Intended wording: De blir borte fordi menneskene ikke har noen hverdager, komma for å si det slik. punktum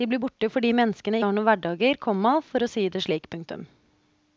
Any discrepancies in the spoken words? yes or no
yes